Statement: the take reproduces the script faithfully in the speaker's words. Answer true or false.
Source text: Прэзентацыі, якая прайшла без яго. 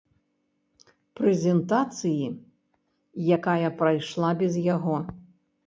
true